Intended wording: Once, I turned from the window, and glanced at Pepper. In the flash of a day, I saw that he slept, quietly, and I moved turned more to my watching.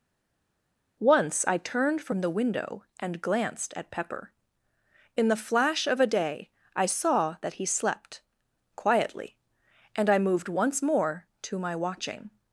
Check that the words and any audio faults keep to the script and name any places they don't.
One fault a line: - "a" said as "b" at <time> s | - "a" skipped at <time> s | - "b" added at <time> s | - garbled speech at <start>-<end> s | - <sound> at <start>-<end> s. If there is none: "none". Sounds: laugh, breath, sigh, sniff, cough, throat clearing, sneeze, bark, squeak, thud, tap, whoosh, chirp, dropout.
- "turned" said as "once" at 10.5 s